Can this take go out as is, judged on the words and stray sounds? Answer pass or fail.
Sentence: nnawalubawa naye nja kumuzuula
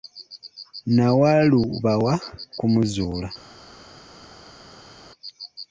fail